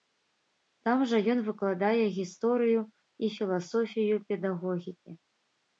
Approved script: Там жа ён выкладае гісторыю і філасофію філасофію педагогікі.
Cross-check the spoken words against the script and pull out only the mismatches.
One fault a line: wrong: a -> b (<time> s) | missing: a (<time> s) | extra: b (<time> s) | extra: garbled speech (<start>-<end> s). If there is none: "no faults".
missing: філасофію (4.2 s)